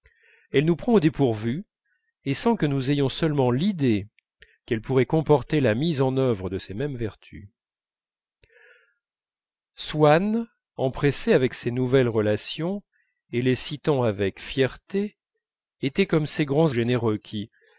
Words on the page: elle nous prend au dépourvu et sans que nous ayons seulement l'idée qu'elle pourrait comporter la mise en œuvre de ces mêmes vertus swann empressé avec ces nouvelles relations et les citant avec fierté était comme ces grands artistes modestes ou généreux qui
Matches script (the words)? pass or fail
fail